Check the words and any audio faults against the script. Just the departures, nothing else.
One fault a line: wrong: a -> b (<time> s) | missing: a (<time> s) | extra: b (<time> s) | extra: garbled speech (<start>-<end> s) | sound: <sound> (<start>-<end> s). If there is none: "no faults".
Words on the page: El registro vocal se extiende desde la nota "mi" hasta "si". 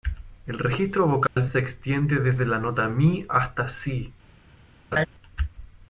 sound: dropout (1.3-1.4 s)
sound: laugh (4.9-5.1 s)